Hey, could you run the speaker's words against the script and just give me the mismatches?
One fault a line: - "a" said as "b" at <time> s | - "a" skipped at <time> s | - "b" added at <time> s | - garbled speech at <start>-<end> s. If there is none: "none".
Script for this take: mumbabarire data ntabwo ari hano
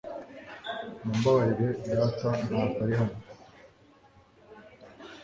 none